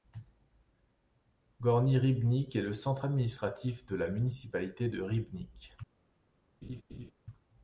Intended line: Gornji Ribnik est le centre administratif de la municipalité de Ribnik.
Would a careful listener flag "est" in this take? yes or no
no